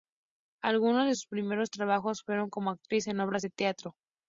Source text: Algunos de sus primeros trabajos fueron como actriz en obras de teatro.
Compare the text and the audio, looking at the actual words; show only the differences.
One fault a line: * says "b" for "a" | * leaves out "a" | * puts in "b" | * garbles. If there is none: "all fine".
all fine